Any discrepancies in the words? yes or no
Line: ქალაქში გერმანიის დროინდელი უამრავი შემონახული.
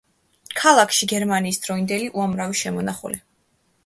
no